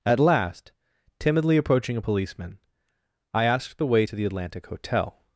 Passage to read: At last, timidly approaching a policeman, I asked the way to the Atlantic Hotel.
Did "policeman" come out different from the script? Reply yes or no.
no